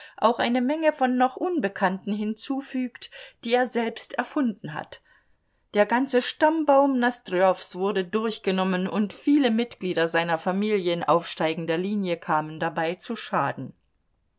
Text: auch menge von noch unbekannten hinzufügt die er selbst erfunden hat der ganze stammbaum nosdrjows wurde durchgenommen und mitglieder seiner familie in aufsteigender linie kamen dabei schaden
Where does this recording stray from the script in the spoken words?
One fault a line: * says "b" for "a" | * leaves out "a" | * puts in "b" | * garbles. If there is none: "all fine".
* puts in "eine"
* puts in "viele"
* puts in "zu"